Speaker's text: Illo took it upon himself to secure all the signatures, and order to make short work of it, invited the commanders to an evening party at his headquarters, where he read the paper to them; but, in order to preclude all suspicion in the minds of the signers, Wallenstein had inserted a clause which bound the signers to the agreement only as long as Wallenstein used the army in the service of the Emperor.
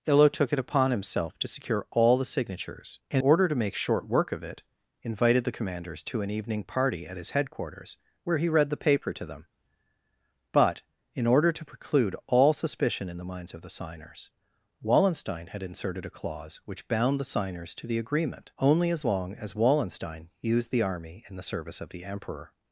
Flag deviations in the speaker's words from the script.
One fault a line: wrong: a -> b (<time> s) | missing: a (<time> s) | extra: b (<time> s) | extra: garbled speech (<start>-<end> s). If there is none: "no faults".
no faults